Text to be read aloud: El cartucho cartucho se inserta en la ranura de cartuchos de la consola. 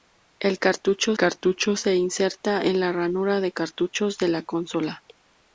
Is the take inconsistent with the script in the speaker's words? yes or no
no